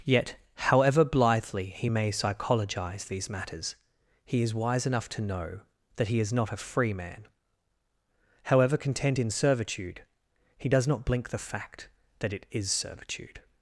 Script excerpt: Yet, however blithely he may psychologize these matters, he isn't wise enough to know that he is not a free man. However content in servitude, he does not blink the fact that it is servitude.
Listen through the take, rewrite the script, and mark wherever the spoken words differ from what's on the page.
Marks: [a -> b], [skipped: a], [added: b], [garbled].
Yet, however blithely he may psychologize these matters, he [isn't -> is] wise enough to know that he is not a free man. However content in servitude, he does not blink the fact that it is servitude.